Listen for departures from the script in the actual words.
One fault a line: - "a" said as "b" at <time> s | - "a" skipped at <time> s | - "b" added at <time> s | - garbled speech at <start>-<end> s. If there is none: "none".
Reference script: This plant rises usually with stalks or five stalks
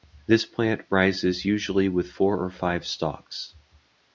- "stalks" said as "four" at 2.1 s